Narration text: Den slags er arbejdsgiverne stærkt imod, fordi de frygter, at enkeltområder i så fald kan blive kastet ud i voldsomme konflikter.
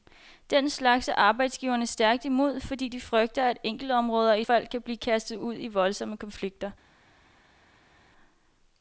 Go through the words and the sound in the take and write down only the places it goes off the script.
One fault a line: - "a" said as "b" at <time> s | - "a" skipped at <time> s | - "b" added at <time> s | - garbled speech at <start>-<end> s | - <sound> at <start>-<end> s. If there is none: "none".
- "så" skipped at 4.5 s